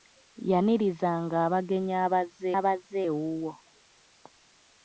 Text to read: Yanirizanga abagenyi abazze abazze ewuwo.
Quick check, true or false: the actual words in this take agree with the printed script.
true